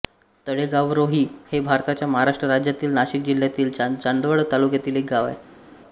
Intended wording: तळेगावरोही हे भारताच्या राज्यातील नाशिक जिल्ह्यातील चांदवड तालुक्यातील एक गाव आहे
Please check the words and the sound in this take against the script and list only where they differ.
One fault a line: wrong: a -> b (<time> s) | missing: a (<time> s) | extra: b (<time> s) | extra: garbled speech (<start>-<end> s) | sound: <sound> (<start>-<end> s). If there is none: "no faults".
extra: महाराष्ट्र (2.1 s)